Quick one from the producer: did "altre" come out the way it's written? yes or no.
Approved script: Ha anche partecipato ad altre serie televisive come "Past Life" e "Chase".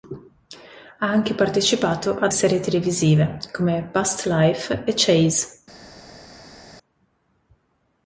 no